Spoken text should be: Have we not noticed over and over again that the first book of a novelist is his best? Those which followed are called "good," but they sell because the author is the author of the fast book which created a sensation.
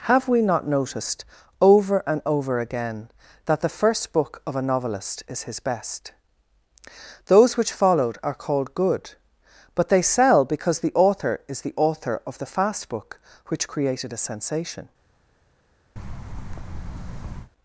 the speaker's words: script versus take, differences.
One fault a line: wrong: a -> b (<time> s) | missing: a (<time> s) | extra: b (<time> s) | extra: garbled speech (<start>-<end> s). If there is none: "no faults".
no faults